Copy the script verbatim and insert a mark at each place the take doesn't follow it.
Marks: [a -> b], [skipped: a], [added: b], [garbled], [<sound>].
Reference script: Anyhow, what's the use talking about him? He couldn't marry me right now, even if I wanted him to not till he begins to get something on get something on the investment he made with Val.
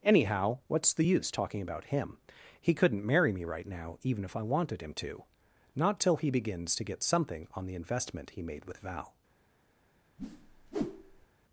Anyhow, what's the use talking about him? He couldn't marry me right now, even if I wanted him to not till he begins to get something on [skipped: get something on] the investment he made with Val. [whoosh]